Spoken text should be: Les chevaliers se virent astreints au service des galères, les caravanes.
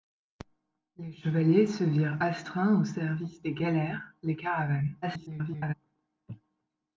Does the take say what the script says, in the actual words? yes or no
no